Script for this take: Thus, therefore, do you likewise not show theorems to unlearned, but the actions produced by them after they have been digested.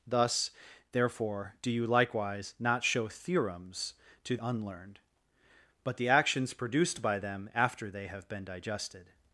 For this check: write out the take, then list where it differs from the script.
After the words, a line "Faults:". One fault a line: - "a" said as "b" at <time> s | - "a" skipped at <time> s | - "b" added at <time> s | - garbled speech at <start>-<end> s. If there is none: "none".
Thus, therefore, do you likewise not show theorems to unlearned, but the actions produced by them after they have been digested.
Faults:
none